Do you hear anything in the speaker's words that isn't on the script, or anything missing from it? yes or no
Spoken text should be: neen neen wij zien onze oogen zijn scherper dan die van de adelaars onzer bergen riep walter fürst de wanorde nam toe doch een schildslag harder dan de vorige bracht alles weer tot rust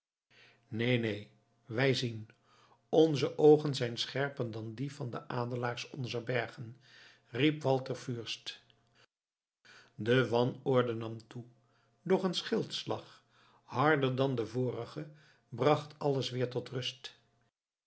no